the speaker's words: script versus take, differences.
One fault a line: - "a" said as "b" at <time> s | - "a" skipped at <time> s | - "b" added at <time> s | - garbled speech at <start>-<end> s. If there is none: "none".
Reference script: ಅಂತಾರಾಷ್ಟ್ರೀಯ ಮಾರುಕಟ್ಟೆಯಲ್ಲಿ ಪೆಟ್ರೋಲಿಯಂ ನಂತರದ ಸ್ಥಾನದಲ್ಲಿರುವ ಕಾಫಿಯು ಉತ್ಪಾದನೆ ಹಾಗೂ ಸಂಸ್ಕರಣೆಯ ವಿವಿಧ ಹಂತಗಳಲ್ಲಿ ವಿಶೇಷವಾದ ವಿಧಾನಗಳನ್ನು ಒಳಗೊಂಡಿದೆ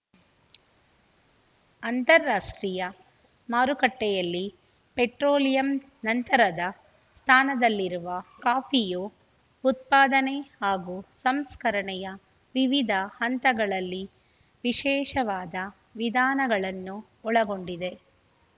none